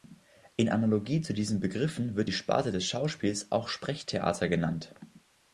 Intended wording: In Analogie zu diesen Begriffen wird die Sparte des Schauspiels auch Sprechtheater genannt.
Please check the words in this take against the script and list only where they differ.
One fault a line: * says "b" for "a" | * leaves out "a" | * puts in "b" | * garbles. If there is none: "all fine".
all fine